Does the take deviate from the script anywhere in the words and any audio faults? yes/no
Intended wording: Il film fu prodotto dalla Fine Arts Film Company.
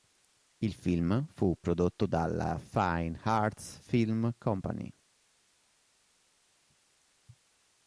no